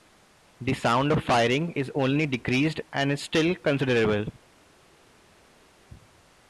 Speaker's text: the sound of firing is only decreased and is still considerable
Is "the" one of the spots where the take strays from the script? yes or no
no